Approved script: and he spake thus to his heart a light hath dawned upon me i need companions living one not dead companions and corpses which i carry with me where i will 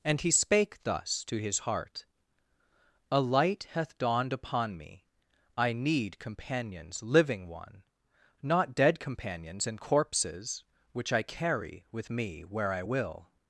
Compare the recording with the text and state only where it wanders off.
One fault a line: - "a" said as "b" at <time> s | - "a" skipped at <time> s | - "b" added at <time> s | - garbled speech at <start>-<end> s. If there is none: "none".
none